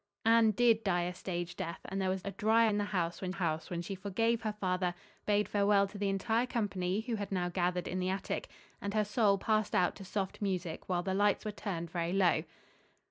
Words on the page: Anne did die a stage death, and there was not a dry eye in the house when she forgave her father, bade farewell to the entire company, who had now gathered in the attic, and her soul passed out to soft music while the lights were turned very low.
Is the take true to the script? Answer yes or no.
no